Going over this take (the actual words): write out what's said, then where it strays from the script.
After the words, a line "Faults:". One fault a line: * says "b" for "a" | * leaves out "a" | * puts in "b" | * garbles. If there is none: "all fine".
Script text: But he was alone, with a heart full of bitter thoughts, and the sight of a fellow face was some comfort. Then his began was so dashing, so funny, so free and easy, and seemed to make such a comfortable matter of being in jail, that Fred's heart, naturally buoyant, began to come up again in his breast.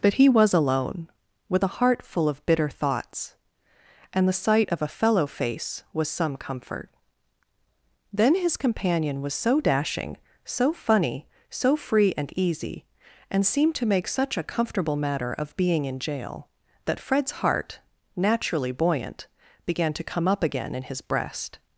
But he was alone, with a heart full of bitter thoughts, and the sight of a fellow face was some comfort. Then his companion was so dashing, so funny, so free and easy, and seemed to make such a comfortable matter of being in jail, that Fred's heart, naturally buoyant, began to come up again in his breast.
Faults:
* says "companion" for "began"